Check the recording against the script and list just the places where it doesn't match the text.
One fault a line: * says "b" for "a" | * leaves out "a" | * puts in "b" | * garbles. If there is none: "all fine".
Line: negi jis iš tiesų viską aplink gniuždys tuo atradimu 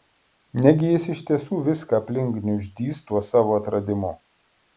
* puts in "savo"